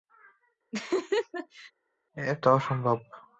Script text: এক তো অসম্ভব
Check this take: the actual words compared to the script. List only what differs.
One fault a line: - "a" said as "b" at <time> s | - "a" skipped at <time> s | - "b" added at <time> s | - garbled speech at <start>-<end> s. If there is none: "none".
none